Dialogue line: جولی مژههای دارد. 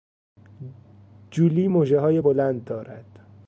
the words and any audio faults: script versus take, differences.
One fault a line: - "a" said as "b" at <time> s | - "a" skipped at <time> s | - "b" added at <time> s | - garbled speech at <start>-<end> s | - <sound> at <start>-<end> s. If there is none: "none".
- "بلند" added at 2.2 s